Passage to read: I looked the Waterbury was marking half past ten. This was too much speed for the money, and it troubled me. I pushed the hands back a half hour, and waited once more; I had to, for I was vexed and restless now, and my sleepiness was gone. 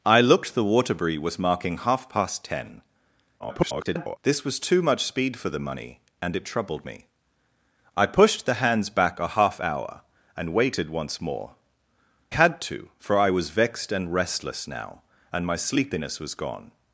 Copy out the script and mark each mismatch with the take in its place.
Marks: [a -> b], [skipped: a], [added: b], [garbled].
I looked the Waterbury was marking half past ten. [garbled] This was too much speed for the money, and it troubled me. I pushed the hands back a half hour, and waited once more; [skipped: I] had to, for I was vexed and restless now, and my sleepiness was gone.